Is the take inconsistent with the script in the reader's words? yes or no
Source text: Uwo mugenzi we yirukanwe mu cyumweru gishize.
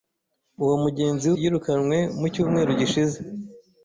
yes